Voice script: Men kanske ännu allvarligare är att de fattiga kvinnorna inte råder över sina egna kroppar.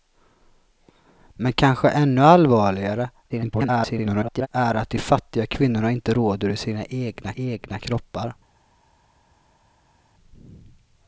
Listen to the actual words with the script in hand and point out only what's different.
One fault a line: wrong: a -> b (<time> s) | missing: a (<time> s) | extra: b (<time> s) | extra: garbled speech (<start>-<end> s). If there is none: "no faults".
extra: garbled speech (3.3-4.5 s)
extra: egna (7.3 s)